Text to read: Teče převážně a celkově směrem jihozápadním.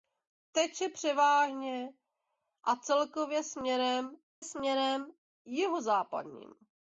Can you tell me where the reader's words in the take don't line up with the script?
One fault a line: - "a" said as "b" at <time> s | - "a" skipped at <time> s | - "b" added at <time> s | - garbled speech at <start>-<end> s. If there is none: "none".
- "směrem" added at 4.4 s